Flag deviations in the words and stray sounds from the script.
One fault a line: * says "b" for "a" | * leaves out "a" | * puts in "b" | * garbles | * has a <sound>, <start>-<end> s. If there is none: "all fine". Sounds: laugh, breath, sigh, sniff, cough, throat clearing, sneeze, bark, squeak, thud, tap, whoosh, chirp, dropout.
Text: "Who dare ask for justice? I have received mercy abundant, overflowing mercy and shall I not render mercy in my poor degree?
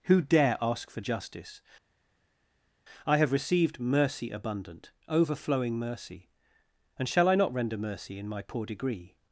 all fine